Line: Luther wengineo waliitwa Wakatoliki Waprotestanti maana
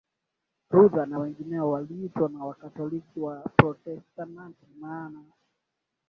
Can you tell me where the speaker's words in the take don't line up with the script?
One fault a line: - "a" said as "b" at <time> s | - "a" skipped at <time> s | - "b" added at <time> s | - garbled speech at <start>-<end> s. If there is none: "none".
- "na" added at 1.1 s
- "na" added at 2.3 s